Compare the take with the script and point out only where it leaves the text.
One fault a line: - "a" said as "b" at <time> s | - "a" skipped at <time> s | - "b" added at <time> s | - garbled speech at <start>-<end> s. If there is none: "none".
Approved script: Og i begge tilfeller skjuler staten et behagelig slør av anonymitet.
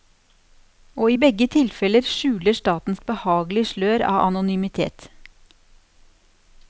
none